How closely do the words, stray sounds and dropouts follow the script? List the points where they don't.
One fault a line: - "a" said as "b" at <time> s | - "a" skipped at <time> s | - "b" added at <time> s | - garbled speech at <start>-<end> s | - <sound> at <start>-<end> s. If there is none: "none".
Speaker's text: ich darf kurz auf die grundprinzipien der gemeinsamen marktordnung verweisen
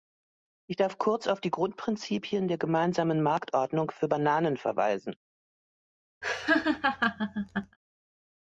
- "für bananen" added at 3.9 s
- laugh at 6.2-7.8 s